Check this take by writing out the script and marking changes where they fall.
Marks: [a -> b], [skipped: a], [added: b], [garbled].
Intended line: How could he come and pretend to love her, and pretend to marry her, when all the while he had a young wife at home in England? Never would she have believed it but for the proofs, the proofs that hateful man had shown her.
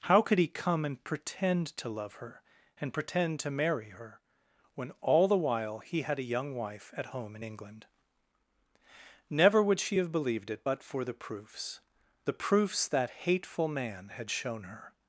How could he come and pretend to love her, and pretend to marry her, when all the while he had a young wife at home in England? Never would she have believed it but for the proofs, the proofs that hateful man had shown her.